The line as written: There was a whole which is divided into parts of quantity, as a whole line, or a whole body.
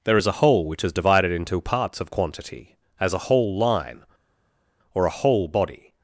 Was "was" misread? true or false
true